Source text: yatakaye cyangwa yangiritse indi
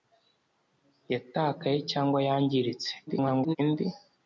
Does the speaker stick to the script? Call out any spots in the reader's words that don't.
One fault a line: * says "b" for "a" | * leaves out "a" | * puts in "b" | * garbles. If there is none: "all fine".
* garbles